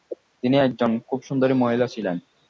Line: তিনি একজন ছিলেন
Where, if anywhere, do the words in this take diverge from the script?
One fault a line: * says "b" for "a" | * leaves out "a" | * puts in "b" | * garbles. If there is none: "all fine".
* puts in "খুব সুন্দরী মহিলা"